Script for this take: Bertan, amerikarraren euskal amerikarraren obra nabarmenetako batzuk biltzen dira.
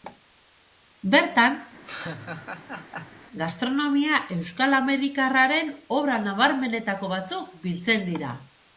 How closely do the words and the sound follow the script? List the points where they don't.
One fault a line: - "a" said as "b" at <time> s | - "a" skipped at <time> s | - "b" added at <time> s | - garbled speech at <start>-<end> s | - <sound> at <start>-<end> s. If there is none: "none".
- laugh at 1.8-3.2 s
- "amerikarraren" said as "gastronomia" at 3.4 s